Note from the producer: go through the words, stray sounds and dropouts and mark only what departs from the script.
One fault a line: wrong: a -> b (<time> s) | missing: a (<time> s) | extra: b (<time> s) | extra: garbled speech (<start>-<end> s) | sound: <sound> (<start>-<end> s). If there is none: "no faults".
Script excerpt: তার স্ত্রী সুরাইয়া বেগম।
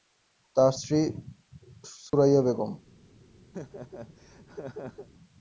sound: dropout (2.1-2.1 s)
sound: laugh (3.5-5.1 s)